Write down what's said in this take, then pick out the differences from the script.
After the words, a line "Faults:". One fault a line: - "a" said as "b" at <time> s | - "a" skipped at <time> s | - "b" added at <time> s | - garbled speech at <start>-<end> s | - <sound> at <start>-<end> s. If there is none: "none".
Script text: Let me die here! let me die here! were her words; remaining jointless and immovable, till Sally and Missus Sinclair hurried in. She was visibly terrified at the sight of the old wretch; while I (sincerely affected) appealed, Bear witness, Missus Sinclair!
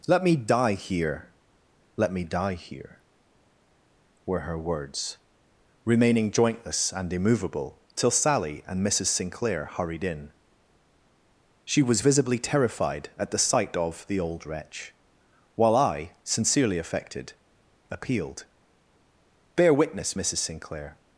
Let me die here! let me die here! were her words; remaining jointless and immovable, till Sally and Missus Sinclair hurried in. She was visibly terrified at the sight of the old wretch; while I (sincerely affected) appealed, Bear witness, Missus Sinclair!
Faults:
none